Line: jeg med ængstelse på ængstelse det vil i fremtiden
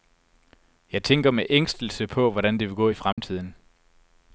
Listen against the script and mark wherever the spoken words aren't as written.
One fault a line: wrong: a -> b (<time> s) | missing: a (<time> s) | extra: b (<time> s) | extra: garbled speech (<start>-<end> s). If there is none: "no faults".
extra: tænker (1.0 s)
wrong: ængstelse -> hvordan (2.3 s)
extra: gå (2.8 s)